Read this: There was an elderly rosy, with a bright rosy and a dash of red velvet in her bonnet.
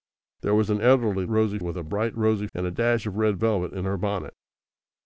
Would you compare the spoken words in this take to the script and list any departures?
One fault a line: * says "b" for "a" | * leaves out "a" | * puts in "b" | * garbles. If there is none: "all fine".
all fine